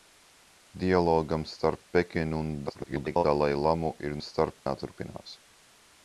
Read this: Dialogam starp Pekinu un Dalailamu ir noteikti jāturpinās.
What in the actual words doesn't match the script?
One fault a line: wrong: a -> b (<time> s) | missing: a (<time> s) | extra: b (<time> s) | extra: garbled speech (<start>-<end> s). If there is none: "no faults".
extra: garbled speech (2.7-3.2 s)
wrong: noteikti -> starp (4.3 s)